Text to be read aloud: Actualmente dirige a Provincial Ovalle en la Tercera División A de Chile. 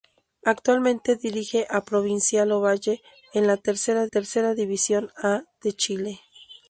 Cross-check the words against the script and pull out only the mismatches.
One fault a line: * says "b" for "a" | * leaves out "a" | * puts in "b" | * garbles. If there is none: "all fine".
* puts in "Tercera"